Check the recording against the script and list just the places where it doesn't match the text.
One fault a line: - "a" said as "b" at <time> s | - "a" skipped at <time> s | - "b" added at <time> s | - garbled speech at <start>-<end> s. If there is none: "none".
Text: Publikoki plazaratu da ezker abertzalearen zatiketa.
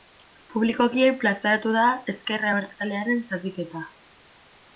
none